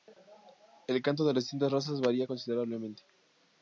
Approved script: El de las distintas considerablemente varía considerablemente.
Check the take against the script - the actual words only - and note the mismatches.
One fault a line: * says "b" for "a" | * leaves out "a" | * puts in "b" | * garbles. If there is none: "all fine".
* puts in "canto"
* says "razas" for "considerablemente"